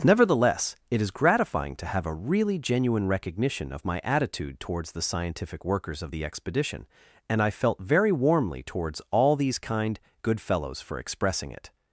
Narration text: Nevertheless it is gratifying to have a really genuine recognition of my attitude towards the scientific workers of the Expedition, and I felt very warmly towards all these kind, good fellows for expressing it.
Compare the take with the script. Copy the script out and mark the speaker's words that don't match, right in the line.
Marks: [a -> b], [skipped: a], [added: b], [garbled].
Nevertheless it is gratifying to have a really genuine recognition of my attitude towards the scientific workers of the Expedition, and I felt very warmly towards all these kind, good fellows for expressing it.